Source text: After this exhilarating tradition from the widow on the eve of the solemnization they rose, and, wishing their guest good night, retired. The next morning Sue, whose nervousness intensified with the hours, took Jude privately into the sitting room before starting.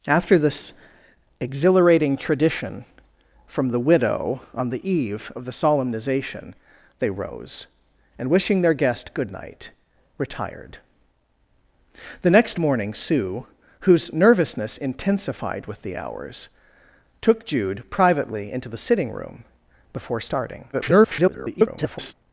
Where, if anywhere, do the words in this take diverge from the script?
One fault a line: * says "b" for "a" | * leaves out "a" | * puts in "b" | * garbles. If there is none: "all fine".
* garbles